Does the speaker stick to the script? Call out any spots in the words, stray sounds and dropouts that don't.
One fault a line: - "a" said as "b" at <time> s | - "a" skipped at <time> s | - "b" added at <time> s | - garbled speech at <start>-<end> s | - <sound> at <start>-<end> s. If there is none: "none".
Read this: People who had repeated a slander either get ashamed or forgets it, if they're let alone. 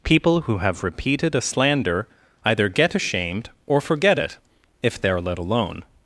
- "had" said as "have" at 0.6 s
- "forgets" said as "forget" at 3.8 s